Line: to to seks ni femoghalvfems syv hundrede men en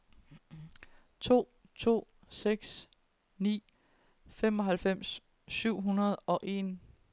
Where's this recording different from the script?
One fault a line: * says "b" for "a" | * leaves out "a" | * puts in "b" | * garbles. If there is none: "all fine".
* says "og" for "men"